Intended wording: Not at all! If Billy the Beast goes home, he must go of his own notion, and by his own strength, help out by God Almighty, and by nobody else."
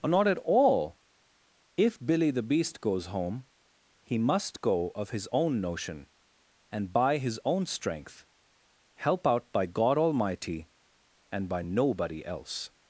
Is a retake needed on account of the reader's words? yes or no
no